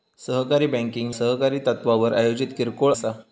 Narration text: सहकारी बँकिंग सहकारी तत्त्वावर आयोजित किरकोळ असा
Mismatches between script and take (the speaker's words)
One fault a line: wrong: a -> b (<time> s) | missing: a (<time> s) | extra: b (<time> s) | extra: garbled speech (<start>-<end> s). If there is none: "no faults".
no faults